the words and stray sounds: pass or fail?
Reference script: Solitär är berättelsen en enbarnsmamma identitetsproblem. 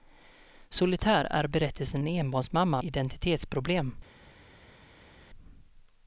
pass